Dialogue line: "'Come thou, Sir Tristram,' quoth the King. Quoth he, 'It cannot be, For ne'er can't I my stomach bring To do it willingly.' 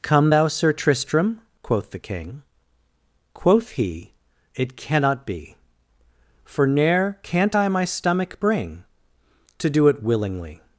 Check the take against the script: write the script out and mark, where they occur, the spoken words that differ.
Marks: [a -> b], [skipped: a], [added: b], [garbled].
"'Come thou, Sir Tristram,' quoth the King. Quoth he, 'It cannot be, For ne'er can't I my stomach bring To do it willingly.'